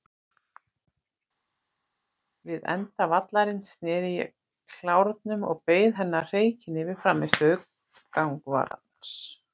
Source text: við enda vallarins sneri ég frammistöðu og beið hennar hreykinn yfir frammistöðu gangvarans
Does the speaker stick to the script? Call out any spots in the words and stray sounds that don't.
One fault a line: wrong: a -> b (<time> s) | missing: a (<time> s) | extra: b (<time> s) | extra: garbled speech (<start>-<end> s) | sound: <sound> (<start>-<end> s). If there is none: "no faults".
wrong: frammistöðu -> klárnum (4.8 s)